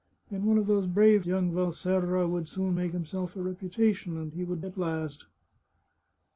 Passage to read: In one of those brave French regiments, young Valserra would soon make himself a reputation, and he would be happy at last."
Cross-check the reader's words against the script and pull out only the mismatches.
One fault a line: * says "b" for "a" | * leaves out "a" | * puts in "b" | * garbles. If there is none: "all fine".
* leaves out "French regiments"
* leaves out "be happy"